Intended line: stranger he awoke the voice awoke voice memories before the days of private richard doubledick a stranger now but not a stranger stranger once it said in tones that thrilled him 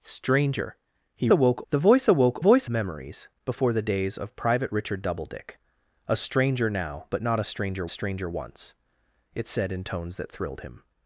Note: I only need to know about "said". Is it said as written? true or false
true